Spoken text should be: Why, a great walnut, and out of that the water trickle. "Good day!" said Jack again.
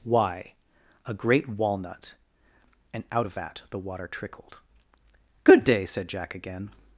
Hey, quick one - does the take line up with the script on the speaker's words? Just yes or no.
no